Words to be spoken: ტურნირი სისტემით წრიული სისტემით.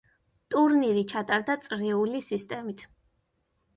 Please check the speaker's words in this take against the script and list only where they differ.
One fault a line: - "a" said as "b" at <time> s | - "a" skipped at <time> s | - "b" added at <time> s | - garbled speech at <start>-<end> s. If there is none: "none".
- "სისტემით" said as "ჩატარდა" at 1.1 s